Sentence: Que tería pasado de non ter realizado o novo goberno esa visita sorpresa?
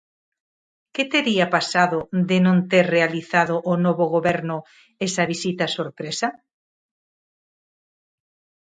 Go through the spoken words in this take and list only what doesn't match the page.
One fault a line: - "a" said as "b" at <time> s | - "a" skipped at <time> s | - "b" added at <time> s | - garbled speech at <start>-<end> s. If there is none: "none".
none